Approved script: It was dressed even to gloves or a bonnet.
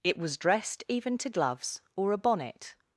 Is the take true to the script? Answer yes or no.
yes